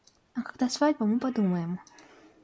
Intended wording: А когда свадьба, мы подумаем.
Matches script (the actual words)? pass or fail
pass